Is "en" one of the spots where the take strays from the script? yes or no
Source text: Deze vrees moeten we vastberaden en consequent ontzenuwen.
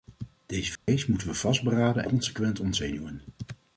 yes